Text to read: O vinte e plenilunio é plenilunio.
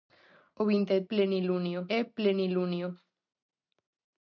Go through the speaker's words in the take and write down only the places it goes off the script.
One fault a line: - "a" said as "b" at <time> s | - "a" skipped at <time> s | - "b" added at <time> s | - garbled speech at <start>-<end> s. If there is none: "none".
none